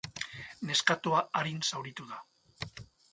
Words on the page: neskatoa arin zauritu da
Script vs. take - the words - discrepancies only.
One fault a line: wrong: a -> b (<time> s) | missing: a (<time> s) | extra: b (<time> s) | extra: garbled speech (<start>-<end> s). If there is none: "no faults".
no faults